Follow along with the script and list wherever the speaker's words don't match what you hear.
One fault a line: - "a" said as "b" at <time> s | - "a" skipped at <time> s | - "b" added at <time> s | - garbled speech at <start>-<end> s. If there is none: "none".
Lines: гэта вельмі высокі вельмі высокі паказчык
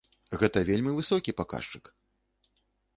- "вельмі высокі" skipped at 1.4 s